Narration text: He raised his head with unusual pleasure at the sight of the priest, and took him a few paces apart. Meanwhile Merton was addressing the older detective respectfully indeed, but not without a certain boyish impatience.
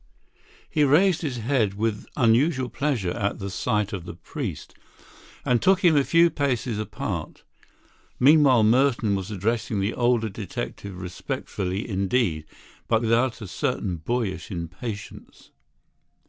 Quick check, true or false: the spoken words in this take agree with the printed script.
false